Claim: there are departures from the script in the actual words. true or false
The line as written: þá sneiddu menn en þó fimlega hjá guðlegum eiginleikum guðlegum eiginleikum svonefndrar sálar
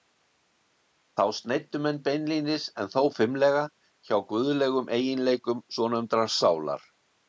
true